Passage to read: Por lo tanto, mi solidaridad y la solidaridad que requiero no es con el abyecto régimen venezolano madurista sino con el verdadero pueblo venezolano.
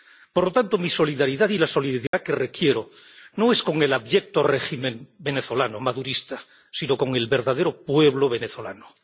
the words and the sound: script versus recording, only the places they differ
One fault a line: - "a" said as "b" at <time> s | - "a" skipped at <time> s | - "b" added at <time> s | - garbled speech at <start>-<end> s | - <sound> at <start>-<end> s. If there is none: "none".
- dropout at 2.1-2.1 s